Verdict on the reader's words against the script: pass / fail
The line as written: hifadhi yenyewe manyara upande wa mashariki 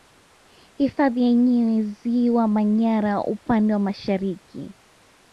fail